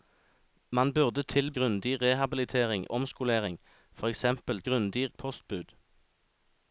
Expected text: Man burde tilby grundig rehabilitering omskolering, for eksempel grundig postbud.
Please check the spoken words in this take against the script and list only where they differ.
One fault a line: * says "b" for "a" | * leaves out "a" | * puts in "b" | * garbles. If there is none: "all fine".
all fine